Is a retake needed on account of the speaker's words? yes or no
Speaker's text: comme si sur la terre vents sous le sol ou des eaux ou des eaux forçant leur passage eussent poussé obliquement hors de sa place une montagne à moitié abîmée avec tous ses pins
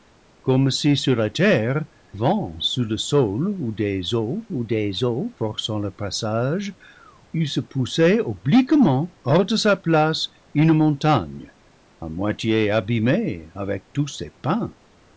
no